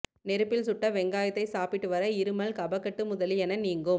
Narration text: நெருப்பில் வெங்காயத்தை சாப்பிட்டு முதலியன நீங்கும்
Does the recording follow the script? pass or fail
fail